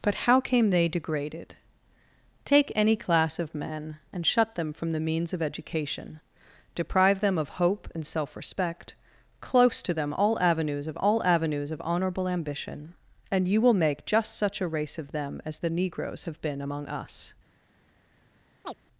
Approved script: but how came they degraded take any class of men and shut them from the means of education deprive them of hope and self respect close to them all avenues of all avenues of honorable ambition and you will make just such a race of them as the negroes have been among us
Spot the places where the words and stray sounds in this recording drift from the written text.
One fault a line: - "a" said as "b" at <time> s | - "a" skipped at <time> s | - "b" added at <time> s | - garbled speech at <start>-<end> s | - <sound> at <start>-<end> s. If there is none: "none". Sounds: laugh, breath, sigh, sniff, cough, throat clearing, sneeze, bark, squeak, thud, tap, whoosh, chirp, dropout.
- chirp at 18.6-18.7 s